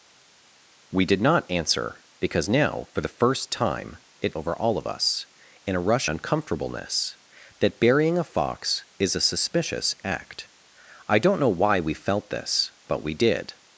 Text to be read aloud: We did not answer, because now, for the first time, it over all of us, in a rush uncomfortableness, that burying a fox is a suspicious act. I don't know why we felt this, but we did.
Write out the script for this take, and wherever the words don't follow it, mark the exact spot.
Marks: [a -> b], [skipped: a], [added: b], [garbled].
We did not answer, because now, for the first time, it over all of us, in a rush uncomfortableness, that burying a fox is a suspicious act. I don't know why we felt this, but we did.